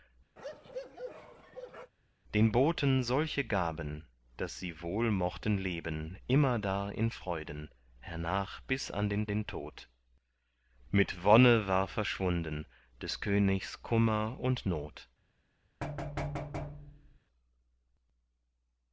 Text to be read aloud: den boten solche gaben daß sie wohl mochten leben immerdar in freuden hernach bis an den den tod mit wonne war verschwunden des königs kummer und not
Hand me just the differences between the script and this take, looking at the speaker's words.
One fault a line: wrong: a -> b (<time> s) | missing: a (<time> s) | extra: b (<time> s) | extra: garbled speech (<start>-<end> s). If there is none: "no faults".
no faults